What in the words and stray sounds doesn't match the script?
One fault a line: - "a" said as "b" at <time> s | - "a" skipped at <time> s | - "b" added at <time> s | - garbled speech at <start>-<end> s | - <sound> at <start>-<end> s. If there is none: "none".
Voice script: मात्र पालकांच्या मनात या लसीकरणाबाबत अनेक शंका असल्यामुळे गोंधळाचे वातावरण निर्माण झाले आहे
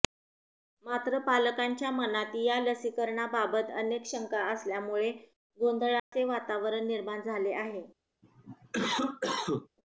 - dropout at 6.0-6.1 s
- cough at 8.2-9.7 s